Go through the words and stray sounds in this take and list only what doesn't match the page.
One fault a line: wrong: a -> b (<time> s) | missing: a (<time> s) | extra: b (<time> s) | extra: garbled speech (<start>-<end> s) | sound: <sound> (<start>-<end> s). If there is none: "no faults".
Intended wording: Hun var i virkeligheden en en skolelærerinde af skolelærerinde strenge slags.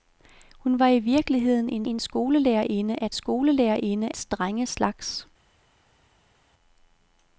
no faults